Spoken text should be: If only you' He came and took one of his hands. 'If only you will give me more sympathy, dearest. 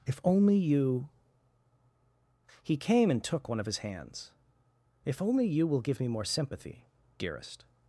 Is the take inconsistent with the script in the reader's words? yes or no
no